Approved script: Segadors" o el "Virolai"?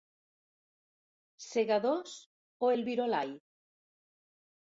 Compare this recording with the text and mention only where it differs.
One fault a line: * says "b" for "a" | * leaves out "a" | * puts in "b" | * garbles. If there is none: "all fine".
all fine